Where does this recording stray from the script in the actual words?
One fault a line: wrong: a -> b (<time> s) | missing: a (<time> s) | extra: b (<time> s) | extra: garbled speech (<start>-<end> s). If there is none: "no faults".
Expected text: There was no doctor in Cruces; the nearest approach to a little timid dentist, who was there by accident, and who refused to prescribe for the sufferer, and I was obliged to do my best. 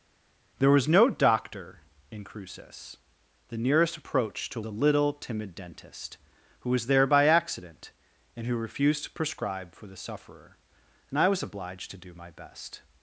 no faults